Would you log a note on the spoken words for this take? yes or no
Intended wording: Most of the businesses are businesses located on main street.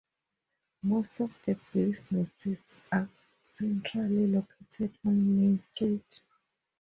yes